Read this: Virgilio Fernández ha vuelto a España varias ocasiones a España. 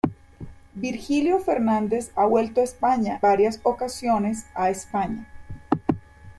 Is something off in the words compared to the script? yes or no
no